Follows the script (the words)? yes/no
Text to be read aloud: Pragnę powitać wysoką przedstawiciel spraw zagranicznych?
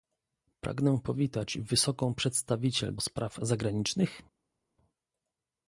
yes